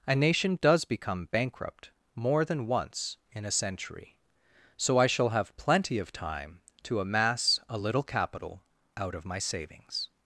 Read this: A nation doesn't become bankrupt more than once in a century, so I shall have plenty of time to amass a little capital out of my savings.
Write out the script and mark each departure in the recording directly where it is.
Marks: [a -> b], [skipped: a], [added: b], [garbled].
A nation [doesn't -> does] become bankrupt more than once in a century, so I shall have plenty of time to amass a little capital out of my savings.